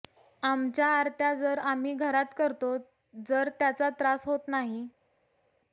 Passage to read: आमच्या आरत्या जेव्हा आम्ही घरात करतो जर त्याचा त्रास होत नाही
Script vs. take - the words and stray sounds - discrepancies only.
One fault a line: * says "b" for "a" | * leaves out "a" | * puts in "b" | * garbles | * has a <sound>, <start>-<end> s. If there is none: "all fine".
* says "जर" for "जेव्हा"